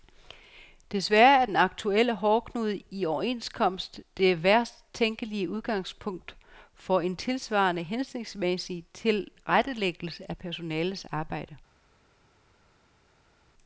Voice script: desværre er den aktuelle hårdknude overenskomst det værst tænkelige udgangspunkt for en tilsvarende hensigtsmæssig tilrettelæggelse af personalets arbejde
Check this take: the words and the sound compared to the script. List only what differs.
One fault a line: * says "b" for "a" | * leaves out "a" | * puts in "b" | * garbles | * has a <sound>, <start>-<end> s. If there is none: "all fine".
* puts in "i"